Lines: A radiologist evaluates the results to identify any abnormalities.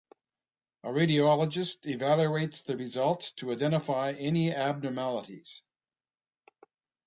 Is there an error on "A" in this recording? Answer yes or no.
no